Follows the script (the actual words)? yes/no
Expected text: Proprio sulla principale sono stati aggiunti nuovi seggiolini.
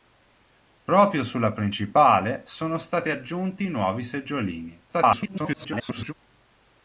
no